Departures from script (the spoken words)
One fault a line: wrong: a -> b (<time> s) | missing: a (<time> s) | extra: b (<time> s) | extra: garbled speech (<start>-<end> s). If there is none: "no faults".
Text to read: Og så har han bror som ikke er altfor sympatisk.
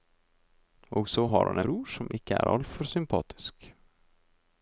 no faults